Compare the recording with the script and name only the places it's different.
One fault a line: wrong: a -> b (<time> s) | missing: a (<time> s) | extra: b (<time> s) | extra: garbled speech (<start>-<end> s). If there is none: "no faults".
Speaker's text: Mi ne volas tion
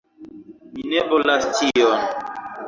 no faults